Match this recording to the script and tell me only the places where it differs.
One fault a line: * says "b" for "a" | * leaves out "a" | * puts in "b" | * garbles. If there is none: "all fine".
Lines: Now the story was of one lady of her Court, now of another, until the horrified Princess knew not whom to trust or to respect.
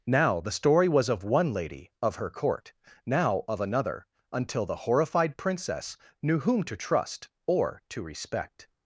* leaves out "not"